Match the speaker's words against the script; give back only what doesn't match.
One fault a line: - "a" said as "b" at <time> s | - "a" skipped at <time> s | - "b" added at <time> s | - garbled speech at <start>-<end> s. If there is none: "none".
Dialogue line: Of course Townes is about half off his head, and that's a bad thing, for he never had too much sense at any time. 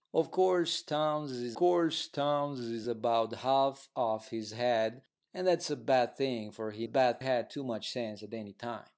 - "course Townes is" added at 1.5 s
- "never" said as "bad" at 6.8 s